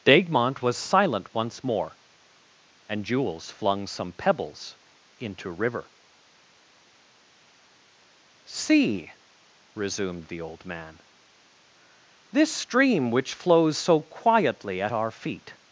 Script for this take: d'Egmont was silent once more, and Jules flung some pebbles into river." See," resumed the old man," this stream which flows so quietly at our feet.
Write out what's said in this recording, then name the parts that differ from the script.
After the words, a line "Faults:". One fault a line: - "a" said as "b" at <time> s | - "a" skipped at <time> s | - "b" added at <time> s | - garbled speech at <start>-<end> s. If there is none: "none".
d'Egmont was silent once more, and Jules flung some pebbles into river." See," resumed the old man," this stream which flows so quietly at our feet.
Faults:
none